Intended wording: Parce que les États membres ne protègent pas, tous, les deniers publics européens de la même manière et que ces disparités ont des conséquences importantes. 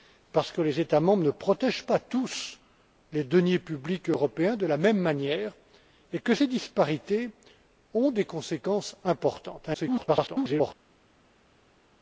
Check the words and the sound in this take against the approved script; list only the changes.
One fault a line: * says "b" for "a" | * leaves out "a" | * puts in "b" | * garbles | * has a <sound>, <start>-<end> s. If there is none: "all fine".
* garbles